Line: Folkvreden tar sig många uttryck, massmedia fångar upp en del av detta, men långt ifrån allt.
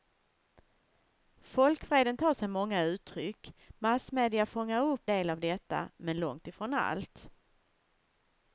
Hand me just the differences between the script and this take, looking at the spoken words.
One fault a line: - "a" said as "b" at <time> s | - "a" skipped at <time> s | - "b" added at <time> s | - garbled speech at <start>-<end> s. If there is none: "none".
- "en" skipped at 5.1 s